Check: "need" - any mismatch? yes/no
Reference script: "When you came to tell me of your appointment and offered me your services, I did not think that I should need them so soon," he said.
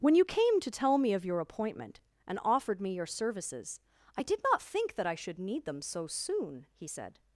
no